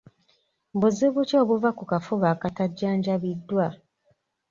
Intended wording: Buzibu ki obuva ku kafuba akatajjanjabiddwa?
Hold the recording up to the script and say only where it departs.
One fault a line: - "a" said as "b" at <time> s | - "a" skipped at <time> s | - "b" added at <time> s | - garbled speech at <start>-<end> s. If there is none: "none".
none